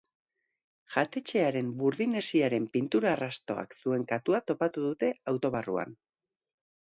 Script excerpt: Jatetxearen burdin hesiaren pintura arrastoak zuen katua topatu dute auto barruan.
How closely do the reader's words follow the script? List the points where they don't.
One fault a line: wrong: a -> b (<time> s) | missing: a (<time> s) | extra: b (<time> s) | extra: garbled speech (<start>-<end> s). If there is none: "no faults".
no faults